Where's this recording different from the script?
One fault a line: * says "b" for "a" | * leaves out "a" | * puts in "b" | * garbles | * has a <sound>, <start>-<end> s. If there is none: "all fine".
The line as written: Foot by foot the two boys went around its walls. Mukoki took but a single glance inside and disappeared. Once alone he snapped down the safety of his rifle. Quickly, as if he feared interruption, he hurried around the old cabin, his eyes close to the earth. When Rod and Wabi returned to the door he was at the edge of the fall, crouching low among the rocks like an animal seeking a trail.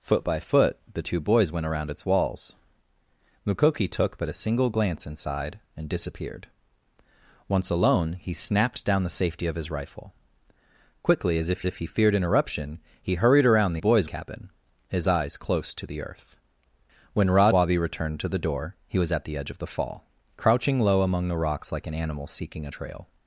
* puts in "if"
* says "boys" for "old"
* leaves out "and"